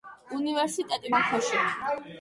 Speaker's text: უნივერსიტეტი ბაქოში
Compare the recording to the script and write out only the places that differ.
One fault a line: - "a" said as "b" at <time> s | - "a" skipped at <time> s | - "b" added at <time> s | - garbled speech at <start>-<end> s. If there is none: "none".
none